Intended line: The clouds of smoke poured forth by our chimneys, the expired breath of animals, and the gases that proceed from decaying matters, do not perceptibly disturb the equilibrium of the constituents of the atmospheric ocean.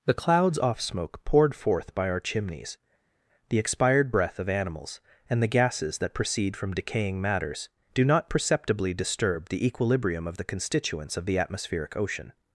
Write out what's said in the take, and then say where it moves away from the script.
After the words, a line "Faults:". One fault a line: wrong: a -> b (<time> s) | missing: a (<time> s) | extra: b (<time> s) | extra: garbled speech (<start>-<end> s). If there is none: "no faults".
The clouds off smoke poured forth by our chimneys, the expired breath of animals, and the gases that proceed from decaying matters, do not perceptibly disturb the equilibrium of the constituents of the atmospheric ocean.
Faults:
wrong: of -> off (0.6 s)